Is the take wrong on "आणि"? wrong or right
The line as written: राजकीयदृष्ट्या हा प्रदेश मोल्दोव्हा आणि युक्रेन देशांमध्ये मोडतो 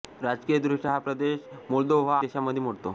wrong